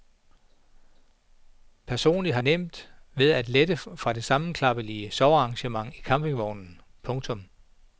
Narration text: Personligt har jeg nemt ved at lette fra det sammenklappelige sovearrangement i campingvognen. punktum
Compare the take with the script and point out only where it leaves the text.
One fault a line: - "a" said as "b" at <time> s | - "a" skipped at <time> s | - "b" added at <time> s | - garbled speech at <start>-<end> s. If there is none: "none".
- "jeg" skipped at 2.4 s